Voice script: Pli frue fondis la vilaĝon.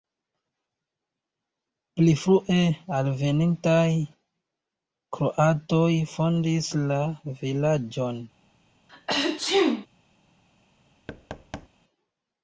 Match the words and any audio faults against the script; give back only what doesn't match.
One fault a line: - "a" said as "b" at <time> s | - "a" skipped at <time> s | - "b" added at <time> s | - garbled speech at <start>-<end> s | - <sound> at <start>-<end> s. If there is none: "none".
- "alvenintaj kroatoj" added at 3.0 s
- sneeze at 8.9-9.9 s
- thud at 11.1-11.7 s